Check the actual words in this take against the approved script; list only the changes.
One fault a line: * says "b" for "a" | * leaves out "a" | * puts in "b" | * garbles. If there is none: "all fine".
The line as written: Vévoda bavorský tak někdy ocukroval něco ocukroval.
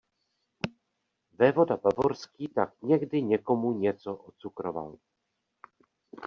* says "někomu" for "ocukroval"